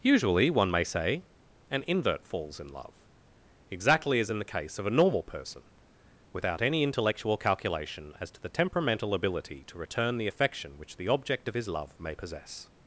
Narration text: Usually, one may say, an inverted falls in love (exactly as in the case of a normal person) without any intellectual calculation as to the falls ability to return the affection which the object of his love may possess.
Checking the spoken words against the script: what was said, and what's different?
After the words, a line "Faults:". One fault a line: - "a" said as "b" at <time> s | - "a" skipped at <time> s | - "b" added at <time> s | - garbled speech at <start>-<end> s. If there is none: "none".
Usually, one may say, an invert falls in love (exactly as in the case of a normal person) without any intellectual calculation as to the temperamental ability to return the affection which the object of his love may possess.
Faults:
- "inverted" said as "invert" at 1.9 s
- "falls" said as "temperamental" at 8.5 s